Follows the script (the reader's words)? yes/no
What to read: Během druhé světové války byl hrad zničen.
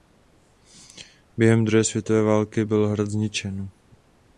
yes